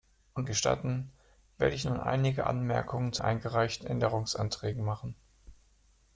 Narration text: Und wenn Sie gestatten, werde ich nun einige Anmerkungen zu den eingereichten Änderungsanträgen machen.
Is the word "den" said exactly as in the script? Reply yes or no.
no